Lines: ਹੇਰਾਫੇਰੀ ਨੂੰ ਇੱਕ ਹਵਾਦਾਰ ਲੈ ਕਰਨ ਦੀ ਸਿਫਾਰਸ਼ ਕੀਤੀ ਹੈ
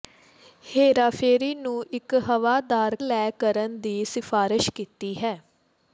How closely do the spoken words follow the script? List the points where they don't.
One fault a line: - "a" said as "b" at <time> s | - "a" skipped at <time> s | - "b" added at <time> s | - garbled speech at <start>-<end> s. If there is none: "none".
none